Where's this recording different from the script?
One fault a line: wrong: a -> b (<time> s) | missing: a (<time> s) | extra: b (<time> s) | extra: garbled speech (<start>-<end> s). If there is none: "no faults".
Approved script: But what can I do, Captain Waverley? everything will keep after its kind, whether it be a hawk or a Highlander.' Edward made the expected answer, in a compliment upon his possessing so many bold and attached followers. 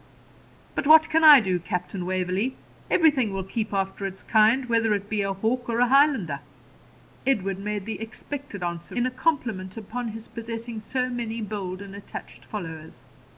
no faults